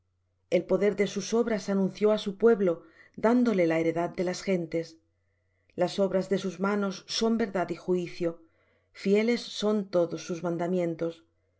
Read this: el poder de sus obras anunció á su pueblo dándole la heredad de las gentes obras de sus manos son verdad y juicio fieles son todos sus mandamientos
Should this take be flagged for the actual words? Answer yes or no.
yes